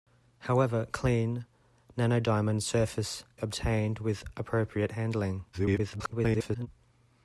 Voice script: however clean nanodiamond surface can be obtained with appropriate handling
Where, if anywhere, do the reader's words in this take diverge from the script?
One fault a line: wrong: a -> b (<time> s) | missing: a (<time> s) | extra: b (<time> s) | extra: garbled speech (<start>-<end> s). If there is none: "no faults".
missing: can be (3.2 s)
extra: garbled speech (5.5-6.7 s)